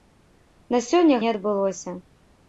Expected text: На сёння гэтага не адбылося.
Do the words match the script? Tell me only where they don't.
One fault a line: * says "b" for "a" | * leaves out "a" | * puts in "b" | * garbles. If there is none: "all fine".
* leaves out "гэтага"